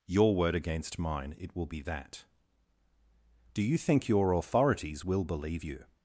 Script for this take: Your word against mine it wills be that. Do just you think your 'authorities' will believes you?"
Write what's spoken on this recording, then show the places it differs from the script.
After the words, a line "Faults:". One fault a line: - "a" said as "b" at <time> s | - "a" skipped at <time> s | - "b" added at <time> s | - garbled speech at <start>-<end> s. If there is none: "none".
Your word against mine it will be that. Do you think your 'authorities' will believe you?"
Faults:
- "wills" said as "will" at 1.6 s
- "just" skipped at 3.6 s
- "believes" said as "believe" at 5.2 s